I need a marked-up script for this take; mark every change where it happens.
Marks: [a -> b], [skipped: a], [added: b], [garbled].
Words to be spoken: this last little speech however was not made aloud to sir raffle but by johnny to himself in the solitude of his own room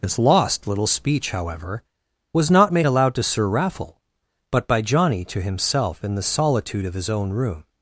this [last -> lost] little speech however was not made aloud to sir raffle but by johnny to himself in the solitude of his own room